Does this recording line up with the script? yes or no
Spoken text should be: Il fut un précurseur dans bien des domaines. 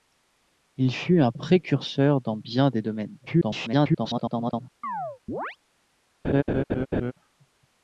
no